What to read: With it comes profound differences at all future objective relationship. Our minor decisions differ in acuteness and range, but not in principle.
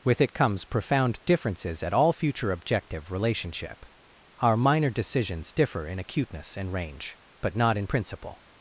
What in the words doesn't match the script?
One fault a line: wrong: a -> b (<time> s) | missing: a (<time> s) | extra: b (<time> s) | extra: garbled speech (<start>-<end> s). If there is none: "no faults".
no faults